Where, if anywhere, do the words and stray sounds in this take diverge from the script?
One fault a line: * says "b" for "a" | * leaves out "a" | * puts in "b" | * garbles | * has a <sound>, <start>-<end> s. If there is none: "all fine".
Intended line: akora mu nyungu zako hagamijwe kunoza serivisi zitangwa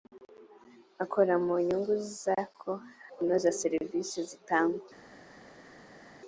* leaves out "hagamijwe"